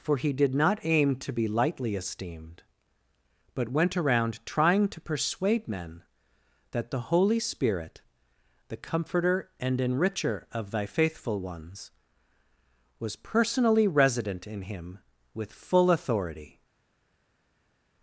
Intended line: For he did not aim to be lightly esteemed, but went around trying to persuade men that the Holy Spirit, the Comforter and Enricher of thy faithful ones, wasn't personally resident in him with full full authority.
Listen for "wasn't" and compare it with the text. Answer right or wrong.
wrong